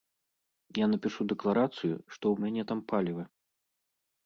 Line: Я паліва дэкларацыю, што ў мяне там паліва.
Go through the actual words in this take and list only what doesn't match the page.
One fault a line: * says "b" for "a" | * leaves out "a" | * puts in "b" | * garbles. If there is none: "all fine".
* says "напішу" for "паліва"